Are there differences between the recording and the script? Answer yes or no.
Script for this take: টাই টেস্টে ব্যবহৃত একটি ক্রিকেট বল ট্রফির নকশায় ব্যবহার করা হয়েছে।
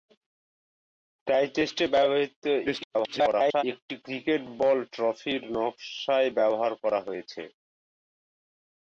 yes